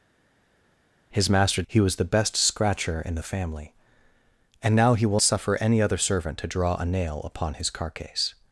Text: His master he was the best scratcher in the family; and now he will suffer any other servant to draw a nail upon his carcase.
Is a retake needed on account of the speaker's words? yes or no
no